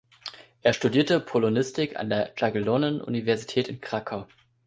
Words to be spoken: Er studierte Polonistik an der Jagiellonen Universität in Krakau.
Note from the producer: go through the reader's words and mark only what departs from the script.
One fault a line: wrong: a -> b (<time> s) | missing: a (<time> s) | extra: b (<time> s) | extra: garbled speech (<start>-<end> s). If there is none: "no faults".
no faults